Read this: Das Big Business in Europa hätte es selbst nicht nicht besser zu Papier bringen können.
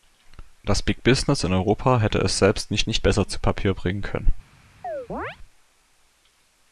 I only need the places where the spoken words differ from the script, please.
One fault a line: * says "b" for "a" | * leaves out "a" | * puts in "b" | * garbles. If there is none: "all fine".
all fine